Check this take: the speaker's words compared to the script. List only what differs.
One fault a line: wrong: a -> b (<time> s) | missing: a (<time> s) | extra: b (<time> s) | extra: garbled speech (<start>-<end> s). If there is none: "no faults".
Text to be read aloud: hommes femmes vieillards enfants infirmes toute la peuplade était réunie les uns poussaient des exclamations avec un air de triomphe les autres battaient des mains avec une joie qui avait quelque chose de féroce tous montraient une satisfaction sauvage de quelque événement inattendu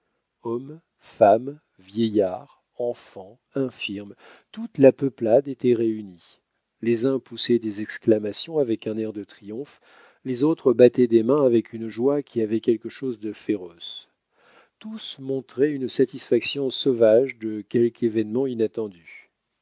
no faults